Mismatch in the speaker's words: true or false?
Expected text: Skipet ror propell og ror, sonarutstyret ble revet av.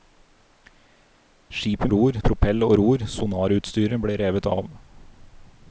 false